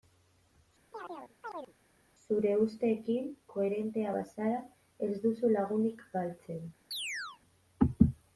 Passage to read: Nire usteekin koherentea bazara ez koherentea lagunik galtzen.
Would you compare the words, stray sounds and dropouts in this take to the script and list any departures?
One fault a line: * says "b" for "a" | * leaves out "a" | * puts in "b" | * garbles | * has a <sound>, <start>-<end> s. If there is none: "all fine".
* has a chirp, 0.9-1.7 s
* says "Zure" for "Nire"
* says "duzu" for "koherentea"
* has a chirp, 6.9-7.4 s